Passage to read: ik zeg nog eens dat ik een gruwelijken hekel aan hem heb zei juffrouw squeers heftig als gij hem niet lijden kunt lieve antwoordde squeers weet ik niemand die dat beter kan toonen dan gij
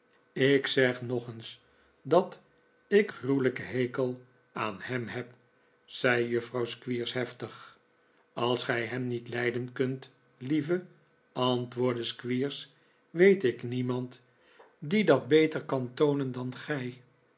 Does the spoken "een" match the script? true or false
false